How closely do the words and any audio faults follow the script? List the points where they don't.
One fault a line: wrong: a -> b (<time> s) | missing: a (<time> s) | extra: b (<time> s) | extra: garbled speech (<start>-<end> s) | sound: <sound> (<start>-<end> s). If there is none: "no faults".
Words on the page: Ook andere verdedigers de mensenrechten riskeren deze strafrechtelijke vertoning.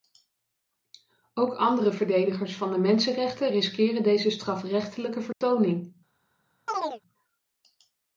extra: van (2.5 s)
sound: dropout (5.3-5.4 s)
sound: chirp (6.7-7.0 s)